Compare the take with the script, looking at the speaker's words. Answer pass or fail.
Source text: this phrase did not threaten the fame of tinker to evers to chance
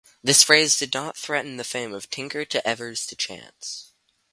pass